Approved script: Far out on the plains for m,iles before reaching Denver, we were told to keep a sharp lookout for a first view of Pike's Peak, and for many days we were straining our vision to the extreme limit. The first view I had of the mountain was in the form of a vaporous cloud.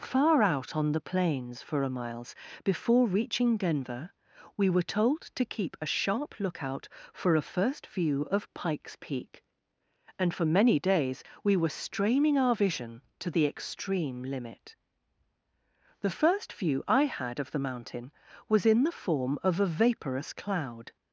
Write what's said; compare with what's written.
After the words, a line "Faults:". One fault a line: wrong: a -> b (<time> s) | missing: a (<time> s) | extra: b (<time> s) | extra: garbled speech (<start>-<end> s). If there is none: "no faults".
Far out on the plains for a m,iles before reaching Denver, we were told to keep a sharp lookout for a first view of Pike's Peak, and for many days we were straining our vision to the extreme limit. The first view I had of the mountain was in the form of a vaporous cloud.
Faults:
extra: a (1.8 s)